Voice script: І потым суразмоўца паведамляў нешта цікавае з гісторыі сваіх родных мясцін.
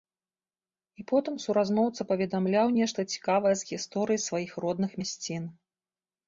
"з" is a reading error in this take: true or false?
false